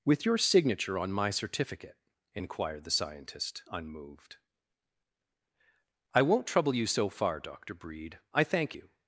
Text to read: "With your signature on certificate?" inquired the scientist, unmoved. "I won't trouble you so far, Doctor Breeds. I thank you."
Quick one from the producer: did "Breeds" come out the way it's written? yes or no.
no